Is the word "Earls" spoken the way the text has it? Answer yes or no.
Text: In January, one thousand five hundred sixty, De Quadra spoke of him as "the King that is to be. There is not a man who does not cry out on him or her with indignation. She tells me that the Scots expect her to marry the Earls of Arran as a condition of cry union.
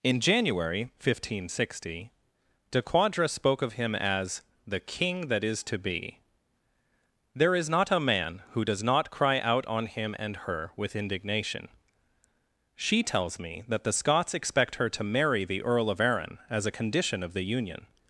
no